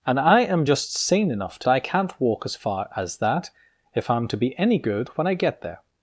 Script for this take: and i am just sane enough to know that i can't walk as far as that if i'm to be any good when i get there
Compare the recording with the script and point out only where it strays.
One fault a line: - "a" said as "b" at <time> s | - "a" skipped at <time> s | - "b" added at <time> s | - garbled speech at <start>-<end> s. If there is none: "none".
- "know that" skipped at 1.7 s